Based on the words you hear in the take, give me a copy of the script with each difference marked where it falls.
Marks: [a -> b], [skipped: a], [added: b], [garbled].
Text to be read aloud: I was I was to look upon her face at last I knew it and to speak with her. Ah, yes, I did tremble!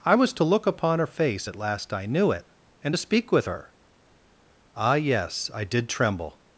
I was [skipped: I was] to look upon her face at last I knew it and to speak with her. Ah, yes, I did tremble!